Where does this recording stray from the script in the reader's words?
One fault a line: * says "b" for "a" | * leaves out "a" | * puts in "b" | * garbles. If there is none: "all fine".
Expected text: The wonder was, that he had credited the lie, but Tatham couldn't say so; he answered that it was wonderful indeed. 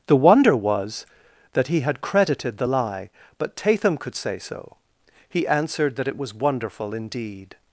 * says "could" for "couldn't"